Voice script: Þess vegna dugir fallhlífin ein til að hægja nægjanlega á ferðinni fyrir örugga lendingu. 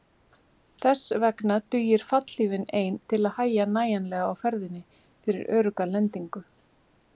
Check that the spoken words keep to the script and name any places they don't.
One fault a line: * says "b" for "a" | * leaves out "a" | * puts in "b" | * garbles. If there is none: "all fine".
all fine